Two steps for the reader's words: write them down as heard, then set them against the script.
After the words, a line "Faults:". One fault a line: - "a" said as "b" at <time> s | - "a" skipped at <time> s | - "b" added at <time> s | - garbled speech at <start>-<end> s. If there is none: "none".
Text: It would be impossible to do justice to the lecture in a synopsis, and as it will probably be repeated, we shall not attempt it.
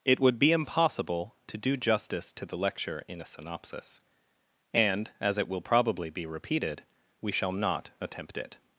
It would be impossible to do justice to the lecture in a synopsis, and as it will probably be repeated, we shall not attempt it.
Faults:
none